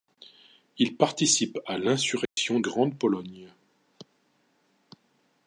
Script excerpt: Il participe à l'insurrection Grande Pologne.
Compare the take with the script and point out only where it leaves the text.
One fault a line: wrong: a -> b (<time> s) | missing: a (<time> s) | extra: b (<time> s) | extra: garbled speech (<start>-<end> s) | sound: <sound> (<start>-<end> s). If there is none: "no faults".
sound: dropout (2.2-2.4 s)